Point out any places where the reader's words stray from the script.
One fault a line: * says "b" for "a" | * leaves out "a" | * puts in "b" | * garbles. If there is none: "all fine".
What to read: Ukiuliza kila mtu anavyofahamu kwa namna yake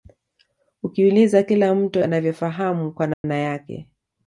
all fine